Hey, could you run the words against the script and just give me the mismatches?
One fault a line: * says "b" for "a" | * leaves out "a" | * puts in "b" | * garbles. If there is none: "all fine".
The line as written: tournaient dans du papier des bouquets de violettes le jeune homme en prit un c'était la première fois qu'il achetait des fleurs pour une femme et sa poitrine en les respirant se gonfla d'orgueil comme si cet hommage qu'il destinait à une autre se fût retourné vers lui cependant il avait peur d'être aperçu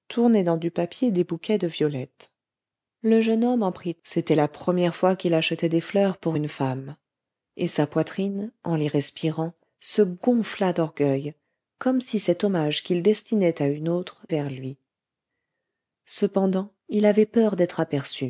* leaves out "un"
* leaves out "se fût retourné"